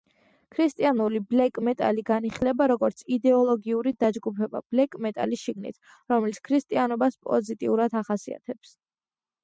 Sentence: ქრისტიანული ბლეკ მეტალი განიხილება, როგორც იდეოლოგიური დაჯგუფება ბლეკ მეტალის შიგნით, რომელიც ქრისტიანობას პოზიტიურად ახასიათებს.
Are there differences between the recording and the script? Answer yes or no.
no